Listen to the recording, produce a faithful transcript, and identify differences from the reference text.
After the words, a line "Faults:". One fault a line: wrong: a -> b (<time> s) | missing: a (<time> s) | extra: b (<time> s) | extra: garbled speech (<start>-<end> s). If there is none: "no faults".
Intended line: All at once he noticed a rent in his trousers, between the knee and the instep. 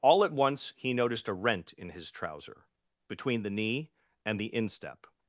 All at once he noticed a rent in his trouser, between the knee and the instep.
Faults:
wrong: trousers -> trouser (2.1 s)